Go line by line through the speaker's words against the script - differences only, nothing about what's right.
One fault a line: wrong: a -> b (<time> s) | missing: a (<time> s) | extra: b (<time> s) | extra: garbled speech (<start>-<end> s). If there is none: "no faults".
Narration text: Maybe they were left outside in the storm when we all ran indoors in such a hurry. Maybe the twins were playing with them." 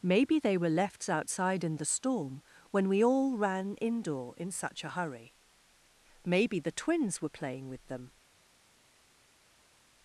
wrong: indoors -> indoor (3.8 s)